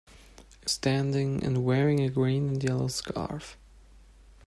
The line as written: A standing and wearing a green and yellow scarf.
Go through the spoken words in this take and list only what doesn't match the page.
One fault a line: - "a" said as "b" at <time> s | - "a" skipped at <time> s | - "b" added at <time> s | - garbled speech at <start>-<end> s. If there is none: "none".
none